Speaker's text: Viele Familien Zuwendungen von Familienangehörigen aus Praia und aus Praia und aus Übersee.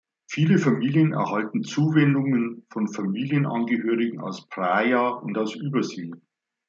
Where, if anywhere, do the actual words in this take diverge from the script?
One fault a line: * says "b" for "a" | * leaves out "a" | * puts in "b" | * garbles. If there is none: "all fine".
* puts in "erhalten"
* leaves out "Praia und aus"